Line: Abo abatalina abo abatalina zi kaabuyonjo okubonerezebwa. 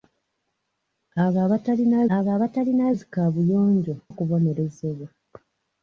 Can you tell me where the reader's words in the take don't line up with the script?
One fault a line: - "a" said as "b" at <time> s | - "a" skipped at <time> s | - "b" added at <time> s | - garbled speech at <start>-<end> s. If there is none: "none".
none